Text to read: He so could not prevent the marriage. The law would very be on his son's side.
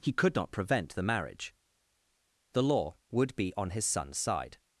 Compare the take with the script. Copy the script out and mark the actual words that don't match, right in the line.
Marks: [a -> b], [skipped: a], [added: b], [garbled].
He [skipped: so] could not prevent the marriage. The law would [skipped: very] be on his son's side.